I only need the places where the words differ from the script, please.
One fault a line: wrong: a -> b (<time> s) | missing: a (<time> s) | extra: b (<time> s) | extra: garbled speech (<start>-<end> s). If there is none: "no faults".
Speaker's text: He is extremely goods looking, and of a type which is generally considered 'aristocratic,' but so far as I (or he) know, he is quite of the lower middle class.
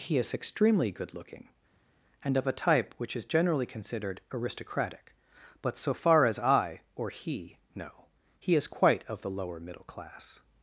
wrong: goods -> good (0.9 s)